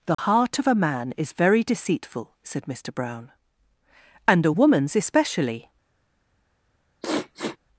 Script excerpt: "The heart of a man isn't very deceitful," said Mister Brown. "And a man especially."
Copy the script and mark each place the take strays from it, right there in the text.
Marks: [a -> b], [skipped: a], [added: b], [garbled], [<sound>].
"The [dropout] heart of a man [isn't -> is] very deceitful," said Mister Brown. "And a [man -> woman's] especially." [sniff]